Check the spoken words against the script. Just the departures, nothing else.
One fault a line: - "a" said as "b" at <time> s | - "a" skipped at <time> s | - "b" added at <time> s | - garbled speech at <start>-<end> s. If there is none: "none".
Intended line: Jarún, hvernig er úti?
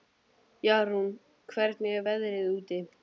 - "veðrið" added at 2.1 s